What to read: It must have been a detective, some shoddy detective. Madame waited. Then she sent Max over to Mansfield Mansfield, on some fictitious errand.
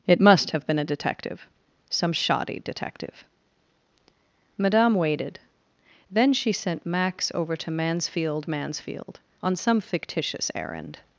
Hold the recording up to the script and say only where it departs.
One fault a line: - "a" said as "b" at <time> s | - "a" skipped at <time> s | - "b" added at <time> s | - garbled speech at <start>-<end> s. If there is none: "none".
none